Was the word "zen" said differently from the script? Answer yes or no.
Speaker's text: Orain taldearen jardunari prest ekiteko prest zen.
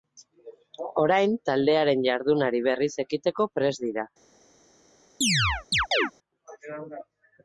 yes